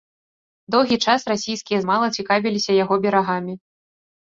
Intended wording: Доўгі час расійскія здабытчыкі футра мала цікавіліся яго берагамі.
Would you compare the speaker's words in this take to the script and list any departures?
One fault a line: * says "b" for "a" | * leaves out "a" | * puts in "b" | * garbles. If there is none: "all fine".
* leaves out "здабытчыкі футра"